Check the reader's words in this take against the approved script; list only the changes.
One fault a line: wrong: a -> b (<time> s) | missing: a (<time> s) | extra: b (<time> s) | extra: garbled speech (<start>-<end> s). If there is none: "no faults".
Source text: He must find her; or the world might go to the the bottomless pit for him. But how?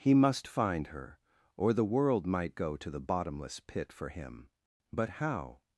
missing: the (3.0 s)